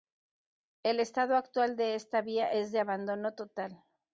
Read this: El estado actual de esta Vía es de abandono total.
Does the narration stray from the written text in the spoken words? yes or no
no